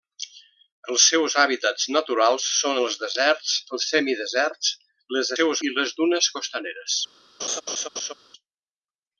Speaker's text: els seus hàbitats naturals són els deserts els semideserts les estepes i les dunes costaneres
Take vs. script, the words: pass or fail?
fail